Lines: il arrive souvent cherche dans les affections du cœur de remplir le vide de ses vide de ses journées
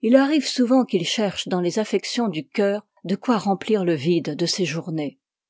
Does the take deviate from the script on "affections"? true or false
false